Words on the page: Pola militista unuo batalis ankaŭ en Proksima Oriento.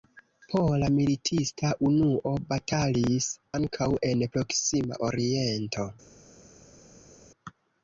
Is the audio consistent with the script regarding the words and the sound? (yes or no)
yes